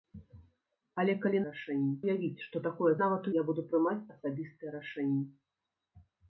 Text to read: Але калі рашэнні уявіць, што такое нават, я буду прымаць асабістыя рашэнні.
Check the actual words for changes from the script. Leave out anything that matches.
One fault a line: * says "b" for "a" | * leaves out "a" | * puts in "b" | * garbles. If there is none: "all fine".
all fine